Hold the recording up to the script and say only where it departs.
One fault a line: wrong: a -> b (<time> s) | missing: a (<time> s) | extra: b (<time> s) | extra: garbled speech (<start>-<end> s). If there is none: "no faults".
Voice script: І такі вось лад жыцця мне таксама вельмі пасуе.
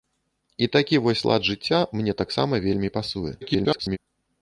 extra: garbled speech (3.4-4.0 s)